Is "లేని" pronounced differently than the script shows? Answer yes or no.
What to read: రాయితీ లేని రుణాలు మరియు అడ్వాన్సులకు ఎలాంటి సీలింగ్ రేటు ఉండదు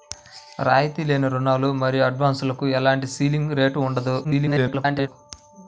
no